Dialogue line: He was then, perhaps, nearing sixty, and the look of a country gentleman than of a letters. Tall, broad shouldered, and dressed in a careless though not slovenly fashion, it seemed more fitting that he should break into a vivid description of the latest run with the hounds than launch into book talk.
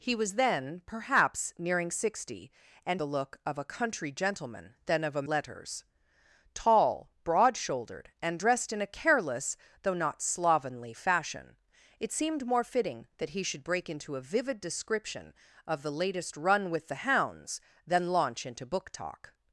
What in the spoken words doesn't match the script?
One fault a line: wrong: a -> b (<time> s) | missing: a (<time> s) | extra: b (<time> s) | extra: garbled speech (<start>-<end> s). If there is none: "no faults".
no faults